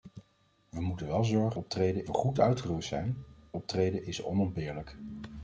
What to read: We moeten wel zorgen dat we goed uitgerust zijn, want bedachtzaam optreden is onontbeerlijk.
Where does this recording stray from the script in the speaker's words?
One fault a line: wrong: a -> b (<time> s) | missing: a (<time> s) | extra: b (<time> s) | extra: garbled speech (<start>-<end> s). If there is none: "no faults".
wrong: dat -> optreden (1.5 s)
missing: want bedachtzaam (3.2 s)